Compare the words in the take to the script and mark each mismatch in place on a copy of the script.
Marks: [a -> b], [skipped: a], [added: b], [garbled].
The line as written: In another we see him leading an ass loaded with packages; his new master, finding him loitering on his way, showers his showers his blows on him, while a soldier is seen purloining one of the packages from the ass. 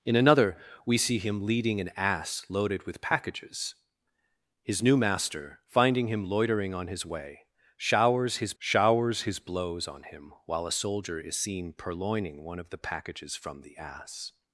In another we see him leading an ass loaded with packages; his new master, finding him loitering on his way, showers his showers his blows on him, while a soldier is seen purloining one of the packages from the ass.